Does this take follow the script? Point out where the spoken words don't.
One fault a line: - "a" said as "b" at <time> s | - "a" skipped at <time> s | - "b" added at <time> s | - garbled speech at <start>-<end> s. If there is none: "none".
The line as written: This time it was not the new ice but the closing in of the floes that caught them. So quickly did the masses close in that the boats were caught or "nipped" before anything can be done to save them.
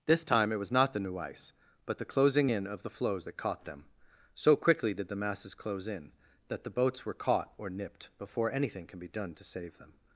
none